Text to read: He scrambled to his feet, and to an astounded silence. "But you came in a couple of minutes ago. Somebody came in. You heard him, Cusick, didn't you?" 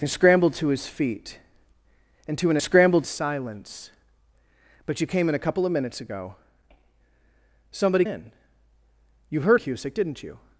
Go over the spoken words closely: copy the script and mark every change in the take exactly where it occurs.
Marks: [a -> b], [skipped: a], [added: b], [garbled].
He scrambled to his feet, and to an [astounded -> scrambled] silence. "But you came in a couple of minutes ago. Somebody [skipped: came] in. You heard [skipped: him,] Cusick, didn't you?"